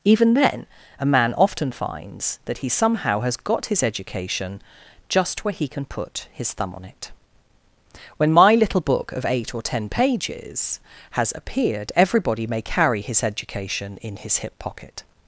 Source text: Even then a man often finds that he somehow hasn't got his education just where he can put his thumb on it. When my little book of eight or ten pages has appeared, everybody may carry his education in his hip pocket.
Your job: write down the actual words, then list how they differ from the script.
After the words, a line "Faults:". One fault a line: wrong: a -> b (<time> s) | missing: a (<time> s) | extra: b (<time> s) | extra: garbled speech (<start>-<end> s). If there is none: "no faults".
Even then a man often finds that he somehow has got his education just where he can put his thumb on it. When my little book of eight or ten pages has appeared, everybody may carry his education in his hip pocket.
Faults:
wrong: hasn't -> has (3.2 s)